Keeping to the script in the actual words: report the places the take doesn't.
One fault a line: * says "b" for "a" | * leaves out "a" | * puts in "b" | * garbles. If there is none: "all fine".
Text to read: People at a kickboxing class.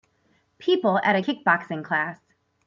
all fine